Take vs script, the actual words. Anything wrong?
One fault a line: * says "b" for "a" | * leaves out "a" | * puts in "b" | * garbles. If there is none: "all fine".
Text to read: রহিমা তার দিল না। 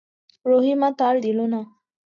all fine